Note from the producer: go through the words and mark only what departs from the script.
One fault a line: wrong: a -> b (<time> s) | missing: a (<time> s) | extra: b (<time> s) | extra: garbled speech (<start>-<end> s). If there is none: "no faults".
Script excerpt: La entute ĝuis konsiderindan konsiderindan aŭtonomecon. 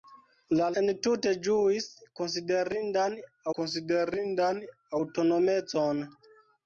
no faults